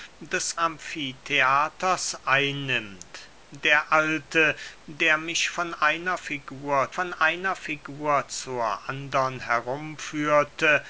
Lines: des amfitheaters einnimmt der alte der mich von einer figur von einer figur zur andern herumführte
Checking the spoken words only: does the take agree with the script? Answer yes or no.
yes